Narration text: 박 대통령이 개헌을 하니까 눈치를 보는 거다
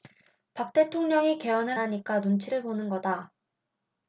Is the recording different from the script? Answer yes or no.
no